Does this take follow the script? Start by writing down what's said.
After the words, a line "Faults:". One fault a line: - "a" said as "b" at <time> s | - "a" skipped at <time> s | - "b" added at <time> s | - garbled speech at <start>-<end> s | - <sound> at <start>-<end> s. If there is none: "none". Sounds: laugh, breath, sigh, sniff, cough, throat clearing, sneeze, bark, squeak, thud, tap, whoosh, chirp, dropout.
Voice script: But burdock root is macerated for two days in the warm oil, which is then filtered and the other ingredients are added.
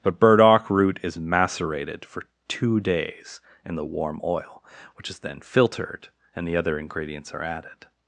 But burdock root is macerated for two days in the warm oil, which is then filtered and the other ingredients are added.
Faults:
none